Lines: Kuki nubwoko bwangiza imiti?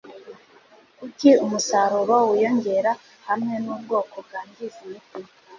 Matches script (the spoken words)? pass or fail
fail